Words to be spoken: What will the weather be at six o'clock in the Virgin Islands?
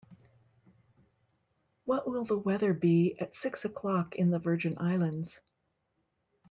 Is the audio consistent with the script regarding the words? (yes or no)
yes